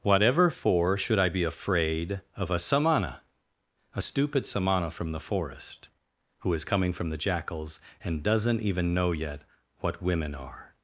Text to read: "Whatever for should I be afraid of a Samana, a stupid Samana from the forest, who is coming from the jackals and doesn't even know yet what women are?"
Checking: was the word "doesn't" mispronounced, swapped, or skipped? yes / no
no